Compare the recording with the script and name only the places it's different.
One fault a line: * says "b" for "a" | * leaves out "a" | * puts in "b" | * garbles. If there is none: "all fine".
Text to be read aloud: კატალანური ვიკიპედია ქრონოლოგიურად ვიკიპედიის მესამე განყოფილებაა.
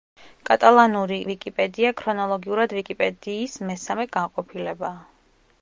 all fine